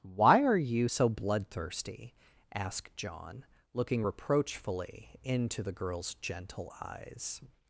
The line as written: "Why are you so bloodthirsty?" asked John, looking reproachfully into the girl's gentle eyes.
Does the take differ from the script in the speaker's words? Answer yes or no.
no